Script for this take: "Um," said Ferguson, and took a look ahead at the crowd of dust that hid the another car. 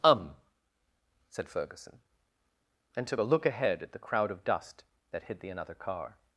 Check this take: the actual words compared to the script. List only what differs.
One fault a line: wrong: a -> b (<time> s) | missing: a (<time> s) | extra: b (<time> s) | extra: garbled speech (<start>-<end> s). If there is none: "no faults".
no faults